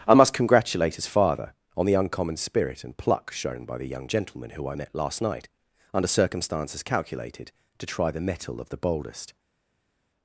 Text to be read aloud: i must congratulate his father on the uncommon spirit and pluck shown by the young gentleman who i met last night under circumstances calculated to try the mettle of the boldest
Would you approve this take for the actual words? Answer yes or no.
yes